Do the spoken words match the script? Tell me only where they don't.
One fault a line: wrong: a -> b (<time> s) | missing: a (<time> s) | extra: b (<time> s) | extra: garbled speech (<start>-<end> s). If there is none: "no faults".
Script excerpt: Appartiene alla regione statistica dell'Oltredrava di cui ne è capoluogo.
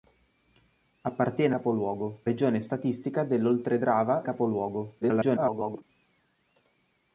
wrong: alla -> capoluogo (1.5 s)
missing: di cui ne (4.2 s)
extra: garbled speech (5.0-5.8 s)